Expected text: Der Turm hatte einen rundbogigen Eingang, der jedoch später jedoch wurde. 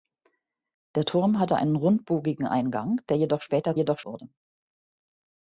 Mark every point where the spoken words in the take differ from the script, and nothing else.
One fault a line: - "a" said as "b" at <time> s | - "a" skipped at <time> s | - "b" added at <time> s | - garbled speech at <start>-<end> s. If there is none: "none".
none